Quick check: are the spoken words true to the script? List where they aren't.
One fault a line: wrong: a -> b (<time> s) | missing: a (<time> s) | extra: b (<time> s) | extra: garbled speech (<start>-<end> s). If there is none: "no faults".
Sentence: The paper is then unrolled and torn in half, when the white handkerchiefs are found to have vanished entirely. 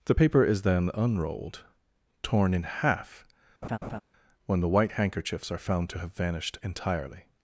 missing: and (1.6 s)